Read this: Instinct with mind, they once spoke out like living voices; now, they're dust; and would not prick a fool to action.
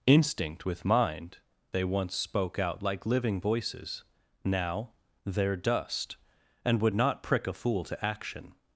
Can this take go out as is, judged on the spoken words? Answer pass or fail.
pass